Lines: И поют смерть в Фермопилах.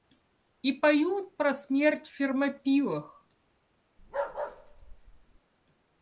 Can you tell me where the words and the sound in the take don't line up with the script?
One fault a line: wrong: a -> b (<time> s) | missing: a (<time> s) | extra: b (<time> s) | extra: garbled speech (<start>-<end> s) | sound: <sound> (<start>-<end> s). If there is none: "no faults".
extra: про (1.4 s)
sound: bark (4.0-5.4 s)